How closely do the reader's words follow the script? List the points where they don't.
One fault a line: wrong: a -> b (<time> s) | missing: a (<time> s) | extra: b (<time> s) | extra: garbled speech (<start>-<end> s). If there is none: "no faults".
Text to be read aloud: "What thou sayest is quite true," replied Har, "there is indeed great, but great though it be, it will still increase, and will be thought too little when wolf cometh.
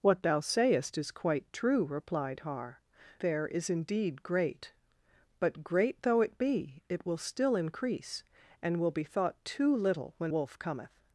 no faults